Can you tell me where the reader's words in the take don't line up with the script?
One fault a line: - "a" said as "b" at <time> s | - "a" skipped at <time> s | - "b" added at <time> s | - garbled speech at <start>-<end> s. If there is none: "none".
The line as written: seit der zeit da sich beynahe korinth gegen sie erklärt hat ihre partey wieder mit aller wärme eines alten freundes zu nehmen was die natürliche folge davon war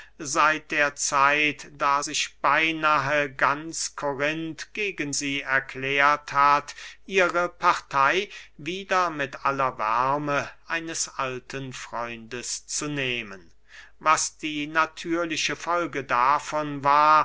- "ganz" added at 3.3 s